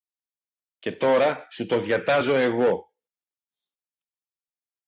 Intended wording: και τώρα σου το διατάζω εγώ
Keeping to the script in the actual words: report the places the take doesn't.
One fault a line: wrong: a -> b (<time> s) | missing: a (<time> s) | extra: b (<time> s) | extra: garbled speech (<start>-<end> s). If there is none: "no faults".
no faults